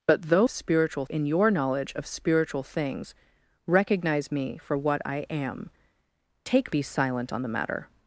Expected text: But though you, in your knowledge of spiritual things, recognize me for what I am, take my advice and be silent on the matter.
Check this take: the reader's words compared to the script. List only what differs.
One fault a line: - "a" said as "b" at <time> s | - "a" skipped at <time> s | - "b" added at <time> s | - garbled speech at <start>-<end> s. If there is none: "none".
- "you" said as "spiritual" at 0.5 s
- "my advice and" skipped at 6.7 s